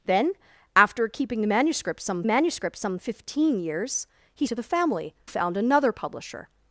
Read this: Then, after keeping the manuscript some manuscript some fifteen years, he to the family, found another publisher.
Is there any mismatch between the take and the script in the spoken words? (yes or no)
no